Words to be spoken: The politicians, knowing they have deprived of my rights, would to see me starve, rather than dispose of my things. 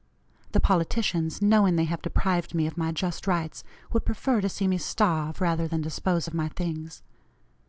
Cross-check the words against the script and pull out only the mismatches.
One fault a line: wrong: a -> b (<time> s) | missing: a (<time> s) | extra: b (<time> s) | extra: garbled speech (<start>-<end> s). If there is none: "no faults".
extra: me (2.5 s)
extra: just (2.9 s)
extra: prefer (4.0 s)